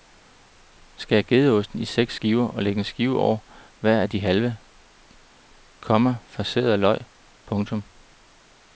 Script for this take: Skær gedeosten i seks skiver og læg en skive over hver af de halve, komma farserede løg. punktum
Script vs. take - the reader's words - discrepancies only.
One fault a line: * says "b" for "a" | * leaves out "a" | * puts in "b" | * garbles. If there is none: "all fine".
all fine